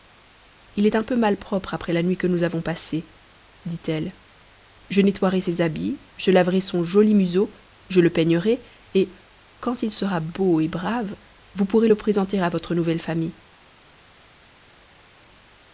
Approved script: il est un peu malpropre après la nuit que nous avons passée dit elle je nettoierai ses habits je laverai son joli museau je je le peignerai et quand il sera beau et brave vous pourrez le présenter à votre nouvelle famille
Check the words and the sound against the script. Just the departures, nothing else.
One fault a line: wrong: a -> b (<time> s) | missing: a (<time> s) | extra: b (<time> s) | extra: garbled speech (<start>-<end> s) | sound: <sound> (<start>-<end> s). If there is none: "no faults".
missing: je (8.0 s)